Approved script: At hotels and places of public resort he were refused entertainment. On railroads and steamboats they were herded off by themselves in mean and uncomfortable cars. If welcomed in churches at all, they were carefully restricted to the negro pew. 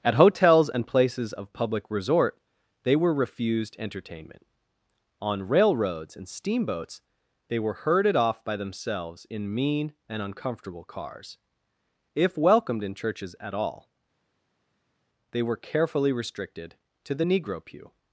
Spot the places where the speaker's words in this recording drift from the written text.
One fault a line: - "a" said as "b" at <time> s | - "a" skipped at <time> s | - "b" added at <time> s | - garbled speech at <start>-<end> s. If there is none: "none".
- "he" said as "they" at 2.8 s